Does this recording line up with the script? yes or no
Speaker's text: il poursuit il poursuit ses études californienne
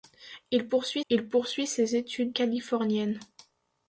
yes